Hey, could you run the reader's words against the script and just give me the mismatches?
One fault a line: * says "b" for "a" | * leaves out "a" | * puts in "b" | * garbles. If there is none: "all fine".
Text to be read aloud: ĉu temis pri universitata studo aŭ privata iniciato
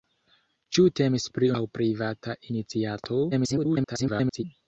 * leaves out "universitata studo"
* garbles